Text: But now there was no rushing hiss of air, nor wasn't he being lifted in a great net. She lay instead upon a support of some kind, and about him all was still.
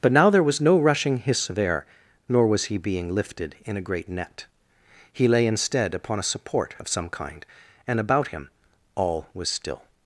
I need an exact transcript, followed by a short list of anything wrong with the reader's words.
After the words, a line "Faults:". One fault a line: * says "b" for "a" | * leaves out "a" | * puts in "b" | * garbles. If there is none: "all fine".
But now there was no rushing hiss of air, nor was he being lifted in a great net. He lay instead upon a support of some kind, and about him all was still.
Faults:
* says "was" for "wasn't"
* says "He" for "She"